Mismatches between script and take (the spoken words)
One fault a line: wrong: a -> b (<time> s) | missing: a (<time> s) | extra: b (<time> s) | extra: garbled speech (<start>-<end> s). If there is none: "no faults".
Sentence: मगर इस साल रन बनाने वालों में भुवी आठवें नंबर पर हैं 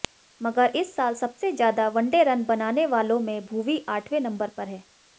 extra: सबसे ज्यादा वनडे (1.1 s)